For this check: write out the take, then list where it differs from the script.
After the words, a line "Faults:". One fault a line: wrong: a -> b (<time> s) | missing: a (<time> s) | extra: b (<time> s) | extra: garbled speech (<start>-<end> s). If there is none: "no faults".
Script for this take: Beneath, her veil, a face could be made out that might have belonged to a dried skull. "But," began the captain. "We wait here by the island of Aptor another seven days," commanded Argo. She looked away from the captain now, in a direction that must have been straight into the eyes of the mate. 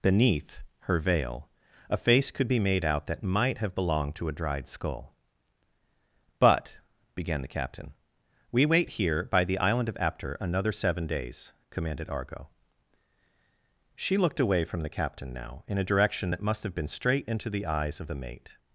Beneath, her veil, a face could be made out that might have belonged to a dried skull. "But," began the captain. "We wait here by the island of Aptor another seven days," commanded Argo. She looked away from the captain now, in a direction that must have been straight into the eyes of the mate.
Faults:
no faults